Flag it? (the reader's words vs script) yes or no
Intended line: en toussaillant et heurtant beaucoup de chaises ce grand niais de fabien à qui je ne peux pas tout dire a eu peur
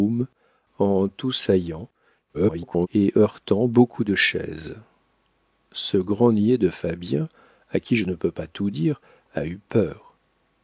yes